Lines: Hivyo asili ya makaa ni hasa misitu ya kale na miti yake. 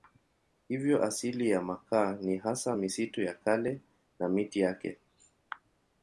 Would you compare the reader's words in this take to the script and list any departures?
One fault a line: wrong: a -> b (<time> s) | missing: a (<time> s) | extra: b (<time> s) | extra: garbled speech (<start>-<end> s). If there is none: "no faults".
no faults